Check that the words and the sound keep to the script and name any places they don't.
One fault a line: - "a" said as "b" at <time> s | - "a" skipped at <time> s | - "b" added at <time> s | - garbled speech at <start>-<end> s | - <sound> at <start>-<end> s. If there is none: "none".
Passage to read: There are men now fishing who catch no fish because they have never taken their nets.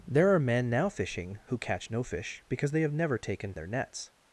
none